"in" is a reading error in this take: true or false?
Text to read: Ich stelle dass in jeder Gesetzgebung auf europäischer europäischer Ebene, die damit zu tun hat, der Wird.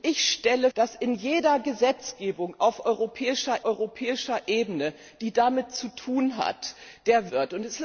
false